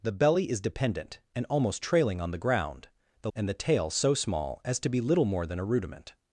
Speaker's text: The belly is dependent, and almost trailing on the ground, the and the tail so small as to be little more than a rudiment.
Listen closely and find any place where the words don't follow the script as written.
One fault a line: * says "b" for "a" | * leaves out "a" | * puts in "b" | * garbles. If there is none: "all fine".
all fine